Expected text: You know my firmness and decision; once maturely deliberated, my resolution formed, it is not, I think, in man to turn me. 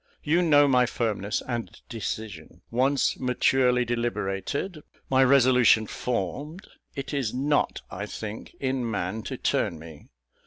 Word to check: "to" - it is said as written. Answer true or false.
true